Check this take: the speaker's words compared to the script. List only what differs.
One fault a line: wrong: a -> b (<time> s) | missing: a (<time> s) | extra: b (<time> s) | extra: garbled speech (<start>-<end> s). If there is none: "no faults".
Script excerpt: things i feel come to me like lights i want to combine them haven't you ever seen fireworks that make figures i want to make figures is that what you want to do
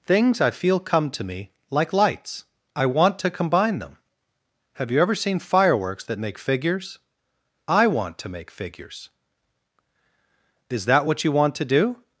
wrong: haven't -> have (4.7 s)